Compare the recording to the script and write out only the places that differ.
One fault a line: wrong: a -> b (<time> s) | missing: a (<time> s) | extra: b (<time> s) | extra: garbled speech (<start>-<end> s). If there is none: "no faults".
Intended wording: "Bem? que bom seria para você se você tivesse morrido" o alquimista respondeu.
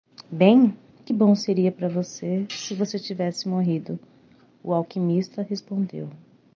no faults